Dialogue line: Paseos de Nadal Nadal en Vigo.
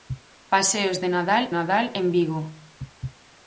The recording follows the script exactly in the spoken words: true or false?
true